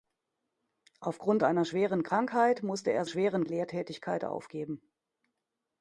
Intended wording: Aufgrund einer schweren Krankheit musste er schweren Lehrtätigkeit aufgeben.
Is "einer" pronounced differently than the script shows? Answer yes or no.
no